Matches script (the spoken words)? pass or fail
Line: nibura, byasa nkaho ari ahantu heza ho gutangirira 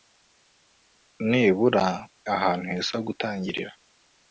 fail